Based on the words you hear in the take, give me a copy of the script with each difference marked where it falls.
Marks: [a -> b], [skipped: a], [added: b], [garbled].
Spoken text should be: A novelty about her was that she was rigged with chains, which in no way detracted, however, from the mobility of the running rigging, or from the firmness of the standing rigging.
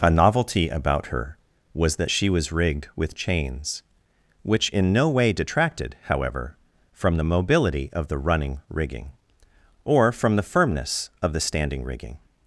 A novelty about her was that she was rigged with chains, which in no way detracted, however, from the mobility of the running rigging, or from the firmness of the standing rigging.